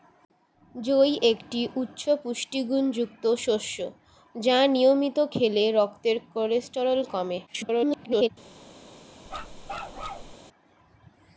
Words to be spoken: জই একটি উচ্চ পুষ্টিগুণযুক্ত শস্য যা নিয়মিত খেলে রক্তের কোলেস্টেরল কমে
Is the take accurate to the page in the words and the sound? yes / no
no